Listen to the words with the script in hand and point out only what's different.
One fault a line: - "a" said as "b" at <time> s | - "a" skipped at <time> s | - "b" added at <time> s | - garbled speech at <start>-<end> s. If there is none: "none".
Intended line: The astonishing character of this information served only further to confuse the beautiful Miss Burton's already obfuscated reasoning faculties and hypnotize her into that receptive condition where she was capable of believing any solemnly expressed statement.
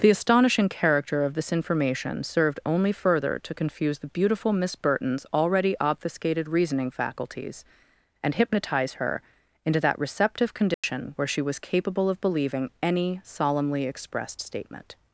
none